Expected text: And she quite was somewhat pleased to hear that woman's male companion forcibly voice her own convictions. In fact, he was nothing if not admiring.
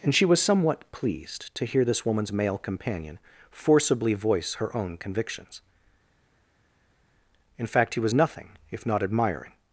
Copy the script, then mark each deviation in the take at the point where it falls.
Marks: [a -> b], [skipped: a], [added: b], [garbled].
And she [skipped: quite] was somewhat pleased to hear [that -> this] woman's male companion forcibly voice her own convictions. In fact, he was nothing if not admiring.